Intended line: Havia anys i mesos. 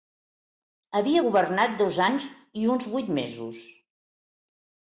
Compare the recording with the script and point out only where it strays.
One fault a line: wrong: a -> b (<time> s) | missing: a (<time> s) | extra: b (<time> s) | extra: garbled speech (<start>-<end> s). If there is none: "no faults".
extra: governat dos (1.2 s)
extra: uns vuit (2.8 s)